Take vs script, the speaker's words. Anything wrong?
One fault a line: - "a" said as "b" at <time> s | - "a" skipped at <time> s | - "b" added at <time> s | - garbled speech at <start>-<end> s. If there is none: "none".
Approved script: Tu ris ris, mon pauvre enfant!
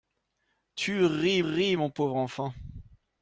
none